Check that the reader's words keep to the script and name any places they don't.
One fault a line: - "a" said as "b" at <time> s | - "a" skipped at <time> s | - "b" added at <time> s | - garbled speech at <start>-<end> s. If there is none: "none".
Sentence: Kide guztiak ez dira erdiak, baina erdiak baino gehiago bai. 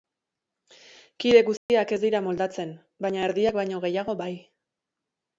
- "erdiak" said as "moldatzen" at 2.3 s